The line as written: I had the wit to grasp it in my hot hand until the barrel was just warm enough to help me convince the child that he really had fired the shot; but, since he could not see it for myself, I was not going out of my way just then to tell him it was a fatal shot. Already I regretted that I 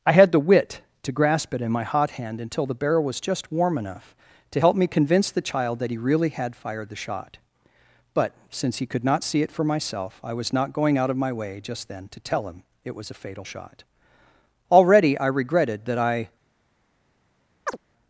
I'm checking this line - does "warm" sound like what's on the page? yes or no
yes